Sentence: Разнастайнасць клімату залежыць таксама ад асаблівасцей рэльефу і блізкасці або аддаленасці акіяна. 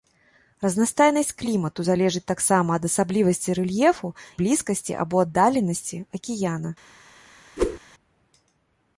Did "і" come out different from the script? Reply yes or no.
yes